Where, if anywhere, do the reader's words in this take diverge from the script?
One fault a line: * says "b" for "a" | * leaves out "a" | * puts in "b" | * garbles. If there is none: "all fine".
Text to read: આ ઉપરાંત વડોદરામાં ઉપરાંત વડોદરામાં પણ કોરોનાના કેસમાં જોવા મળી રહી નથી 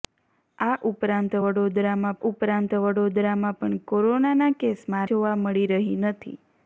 all fine